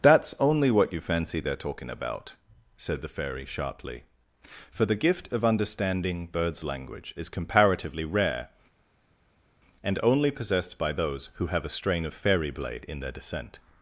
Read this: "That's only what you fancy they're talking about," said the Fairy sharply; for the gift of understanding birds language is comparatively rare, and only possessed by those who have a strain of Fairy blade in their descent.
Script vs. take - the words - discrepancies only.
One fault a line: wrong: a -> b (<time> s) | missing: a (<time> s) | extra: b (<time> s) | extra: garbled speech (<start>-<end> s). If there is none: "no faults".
no faults